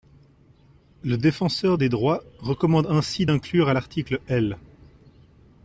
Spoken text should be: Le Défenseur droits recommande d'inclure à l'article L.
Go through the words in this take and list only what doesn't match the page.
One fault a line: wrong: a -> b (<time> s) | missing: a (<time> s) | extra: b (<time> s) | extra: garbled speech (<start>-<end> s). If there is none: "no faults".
extra: des (1.8 s)
extra: ainsi (2.9 s)